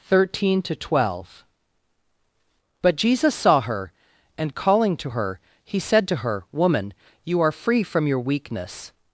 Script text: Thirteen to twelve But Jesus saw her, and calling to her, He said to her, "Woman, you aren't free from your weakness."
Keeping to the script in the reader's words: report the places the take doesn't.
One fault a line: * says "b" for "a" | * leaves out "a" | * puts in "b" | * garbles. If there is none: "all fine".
* says "are" for "aren't"